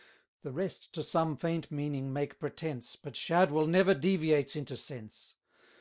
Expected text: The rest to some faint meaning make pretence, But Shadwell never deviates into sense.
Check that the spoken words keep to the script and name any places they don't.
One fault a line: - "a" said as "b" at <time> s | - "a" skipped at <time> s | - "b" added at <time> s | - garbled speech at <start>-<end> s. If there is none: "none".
none